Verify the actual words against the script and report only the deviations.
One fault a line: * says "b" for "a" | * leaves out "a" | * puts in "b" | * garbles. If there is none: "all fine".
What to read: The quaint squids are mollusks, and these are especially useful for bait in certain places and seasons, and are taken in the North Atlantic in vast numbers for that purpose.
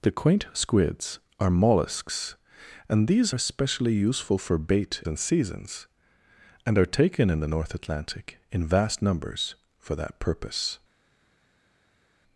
* leaves out "are"
* leaves out "in certain places"